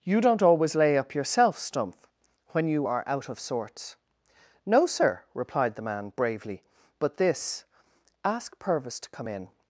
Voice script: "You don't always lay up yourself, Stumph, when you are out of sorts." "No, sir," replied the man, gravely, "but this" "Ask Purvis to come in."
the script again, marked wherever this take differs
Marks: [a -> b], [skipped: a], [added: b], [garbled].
"You don't always lay up yourself, Stumph, when you are out of sorts." "No, sir," replied the man, [gravely, -> bravely] "but this" "Ask Purvis to come in."